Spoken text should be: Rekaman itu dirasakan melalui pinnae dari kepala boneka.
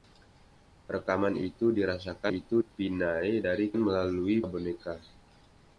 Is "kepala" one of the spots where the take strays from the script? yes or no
yes